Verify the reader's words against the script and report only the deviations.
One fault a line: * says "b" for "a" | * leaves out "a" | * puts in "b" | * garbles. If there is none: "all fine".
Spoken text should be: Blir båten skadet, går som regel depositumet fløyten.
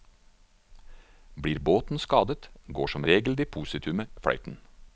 all fine